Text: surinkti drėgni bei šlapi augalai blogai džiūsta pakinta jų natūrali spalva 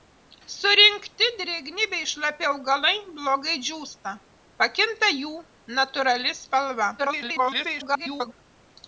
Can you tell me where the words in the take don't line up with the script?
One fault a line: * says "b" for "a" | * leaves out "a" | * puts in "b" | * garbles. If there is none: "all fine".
* garbles